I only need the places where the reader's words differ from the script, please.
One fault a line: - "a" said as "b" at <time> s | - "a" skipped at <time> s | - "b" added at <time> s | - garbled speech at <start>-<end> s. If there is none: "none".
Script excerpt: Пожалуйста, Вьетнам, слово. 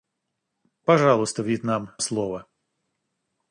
none